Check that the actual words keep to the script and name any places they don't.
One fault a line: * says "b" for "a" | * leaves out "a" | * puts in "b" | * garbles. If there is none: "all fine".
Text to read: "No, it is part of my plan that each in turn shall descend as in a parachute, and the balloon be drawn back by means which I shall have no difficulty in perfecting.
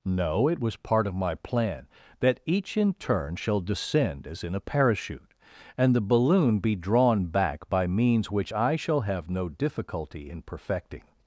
* says "was" for "is"